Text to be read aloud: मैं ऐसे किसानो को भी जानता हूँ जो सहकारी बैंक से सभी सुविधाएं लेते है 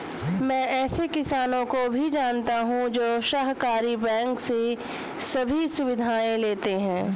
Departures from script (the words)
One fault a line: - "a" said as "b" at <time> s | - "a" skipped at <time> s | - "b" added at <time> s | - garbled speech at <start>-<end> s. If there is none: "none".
none